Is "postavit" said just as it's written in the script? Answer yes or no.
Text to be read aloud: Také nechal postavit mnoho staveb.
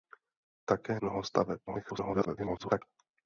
no